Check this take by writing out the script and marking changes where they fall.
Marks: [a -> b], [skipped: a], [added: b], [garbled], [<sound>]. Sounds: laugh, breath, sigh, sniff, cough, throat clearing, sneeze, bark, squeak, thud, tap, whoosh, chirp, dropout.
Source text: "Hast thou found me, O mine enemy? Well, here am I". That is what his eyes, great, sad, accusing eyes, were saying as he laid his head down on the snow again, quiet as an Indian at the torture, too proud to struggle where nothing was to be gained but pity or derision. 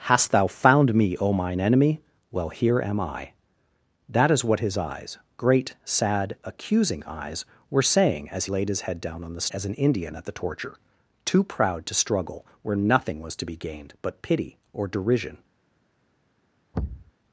"Hast thou found me, O mine enemy? Well, here am I". That is what his eyes, great, sad, accusing eyes, were saying as [skipped: he] laid his head down on the [skipped: snow again, quiet] as an Indian at the torture, too proud to struggle where nothing was to be gained but pity or derision. [thud]